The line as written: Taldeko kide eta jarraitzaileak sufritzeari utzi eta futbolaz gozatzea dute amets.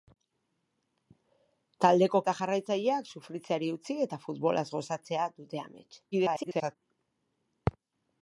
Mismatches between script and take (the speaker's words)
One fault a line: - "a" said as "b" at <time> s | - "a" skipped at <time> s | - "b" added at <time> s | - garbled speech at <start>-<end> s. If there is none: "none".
- "kide" skipped at 2.2 s
- garbled speech at 6.1-6.8 s